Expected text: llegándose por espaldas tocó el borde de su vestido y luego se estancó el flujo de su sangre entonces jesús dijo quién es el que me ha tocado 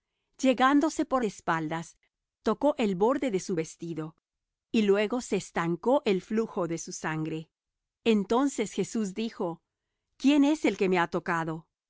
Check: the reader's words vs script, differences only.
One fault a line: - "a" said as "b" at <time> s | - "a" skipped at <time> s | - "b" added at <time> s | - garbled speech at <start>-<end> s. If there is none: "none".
none